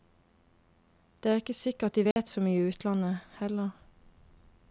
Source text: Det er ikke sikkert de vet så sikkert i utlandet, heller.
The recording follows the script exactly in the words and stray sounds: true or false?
false